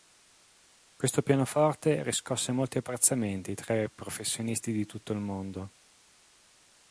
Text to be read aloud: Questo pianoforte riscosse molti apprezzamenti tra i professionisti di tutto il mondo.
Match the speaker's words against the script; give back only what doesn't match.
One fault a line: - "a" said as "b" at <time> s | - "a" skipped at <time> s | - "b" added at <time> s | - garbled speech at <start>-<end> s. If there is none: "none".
none